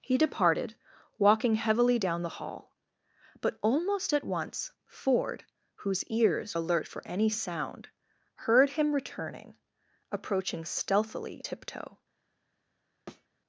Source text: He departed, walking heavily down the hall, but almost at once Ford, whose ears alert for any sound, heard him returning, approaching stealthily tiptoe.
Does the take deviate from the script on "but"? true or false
false